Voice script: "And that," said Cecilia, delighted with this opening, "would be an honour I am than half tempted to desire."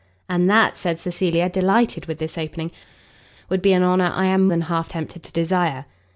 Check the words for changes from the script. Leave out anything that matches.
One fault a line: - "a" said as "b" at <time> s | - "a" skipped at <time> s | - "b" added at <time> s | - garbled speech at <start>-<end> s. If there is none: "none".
none